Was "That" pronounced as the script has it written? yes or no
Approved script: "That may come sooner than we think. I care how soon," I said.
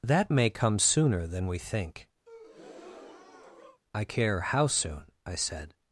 yes